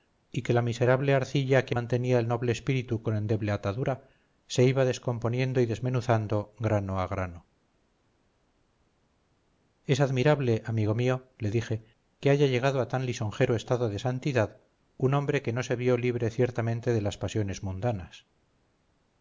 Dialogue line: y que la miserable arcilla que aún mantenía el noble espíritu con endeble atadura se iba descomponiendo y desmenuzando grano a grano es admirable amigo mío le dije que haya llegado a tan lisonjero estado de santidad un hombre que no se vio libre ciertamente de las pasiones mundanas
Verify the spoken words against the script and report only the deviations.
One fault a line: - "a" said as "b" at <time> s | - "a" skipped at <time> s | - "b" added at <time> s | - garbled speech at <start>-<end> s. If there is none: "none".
- "aún" skipped at 1.8 s